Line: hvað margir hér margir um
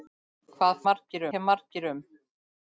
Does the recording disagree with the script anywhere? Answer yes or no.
no